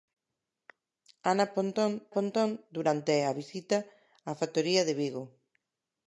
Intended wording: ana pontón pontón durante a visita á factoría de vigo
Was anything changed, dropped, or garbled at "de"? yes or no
no